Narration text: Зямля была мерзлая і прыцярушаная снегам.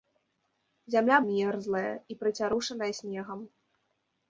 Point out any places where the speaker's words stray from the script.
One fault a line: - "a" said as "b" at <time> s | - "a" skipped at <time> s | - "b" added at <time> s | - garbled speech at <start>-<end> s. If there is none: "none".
- "была" skipped at 1.2 s